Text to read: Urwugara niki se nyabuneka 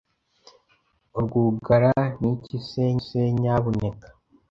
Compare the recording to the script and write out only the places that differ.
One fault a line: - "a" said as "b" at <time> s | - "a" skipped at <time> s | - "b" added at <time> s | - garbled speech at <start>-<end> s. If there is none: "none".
- "se" added at 3.0 s